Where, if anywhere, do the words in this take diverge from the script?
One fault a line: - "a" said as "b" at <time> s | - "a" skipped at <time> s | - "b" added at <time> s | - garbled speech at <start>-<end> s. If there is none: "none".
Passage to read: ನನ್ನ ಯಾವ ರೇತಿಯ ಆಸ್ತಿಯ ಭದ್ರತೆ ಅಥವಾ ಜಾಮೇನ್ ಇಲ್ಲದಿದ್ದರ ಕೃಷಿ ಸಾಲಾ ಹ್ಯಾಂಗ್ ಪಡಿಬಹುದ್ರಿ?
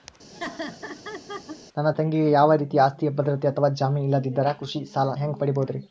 - "ತಂಗಿಗೆ" added at 1.9 s